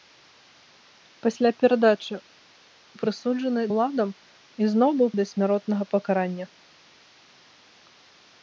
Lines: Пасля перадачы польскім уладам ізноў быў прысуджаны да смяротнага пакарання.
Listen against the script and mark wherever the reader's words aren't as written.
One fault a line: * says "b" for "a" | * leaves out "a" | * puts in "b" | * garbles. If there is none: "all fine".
* says "прысуджаны" for "польскім"
* leaves out "прысуджаны"